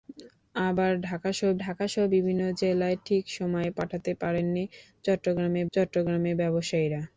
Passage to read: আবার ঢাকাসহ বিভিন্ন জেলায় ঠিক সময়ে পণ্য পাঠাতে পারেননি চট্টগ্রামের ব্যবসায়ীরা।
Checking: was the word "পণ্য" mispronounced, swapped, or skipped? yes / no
yes